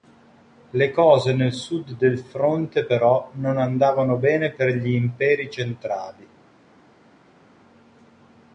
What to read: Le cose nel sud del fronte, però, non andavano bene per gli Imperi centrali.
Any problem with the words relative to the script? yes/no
no